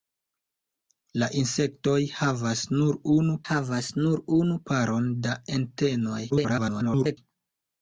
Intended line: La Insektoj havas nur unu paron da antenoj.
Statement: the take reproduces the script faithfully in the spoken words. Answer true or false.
false